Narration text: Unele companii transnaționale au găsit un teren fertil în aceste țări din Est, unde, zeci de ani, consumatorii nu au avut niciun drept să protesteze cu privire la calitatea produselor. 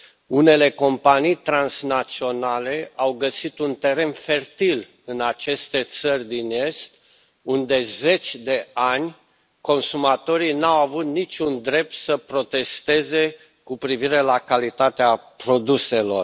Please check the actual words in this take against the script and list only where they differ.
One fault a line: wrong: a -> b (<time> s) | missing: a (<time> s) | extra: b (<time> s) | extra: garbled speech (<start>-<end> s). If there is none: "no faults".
no faults